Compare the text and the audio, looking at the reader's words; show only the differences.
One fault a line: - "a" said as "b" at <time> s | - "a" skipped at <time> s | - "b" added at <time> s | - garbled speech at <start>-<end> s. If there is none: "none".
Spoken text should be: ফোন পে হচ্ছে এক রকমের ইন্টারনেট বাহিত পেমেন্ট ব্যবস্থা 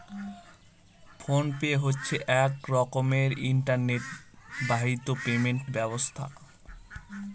none